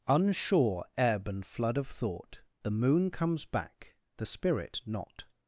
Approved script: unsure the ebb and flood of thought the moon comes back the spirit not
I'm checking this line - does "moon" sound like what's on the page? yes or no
yes